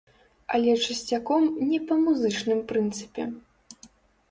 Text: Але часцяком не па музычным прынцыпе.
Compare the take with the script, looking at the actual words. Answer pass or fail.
pass